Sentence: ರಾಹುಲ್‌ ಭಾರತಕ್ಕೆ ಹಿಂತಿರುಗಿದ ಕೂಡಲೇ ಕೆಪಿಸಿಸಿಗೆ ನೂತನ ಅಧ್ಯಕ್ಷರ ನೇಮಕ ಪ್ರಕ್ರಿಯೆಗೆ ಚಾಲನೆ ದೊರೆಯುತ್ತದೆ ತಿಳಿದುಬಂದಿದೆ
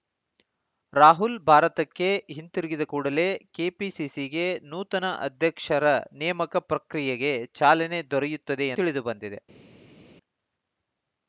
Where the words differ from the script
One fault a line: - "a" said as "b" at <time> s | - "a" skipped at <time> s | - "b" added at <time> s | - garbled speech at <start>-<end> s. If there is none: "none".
none